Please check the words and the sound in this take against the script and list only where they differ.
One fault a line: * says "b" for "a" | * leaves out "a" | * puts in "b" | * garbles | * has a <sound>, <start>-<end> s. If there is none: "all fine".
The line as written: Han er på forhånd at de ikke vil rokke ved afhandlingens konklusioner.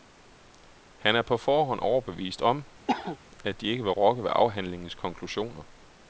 * puts in "overbevist om"
* has a cough, 2.9-3.2 s